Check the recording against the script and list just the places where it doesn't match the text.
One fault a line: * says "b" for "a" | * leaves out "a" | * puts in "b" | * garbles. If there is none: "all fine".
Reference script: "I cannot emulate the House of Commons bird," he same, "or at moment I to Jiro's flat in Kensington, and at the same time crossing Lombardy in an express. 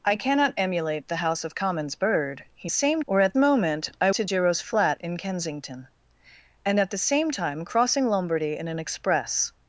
all fine